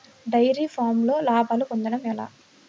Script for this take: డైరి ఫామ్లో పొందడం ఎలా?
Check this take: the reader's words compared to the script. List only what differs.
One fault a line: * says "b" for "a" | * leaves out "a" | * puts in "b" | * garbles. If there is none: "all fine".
* puts in "లాభాలు"